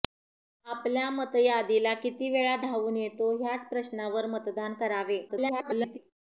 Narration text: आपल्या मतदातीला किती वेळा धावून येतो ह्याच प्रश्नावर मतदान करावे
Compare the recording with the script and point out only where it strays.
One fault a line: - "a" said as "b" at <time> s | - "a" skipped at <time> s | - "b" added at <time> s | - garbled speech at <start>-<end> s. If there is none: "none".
- garbled speech at 5.3-6.0 s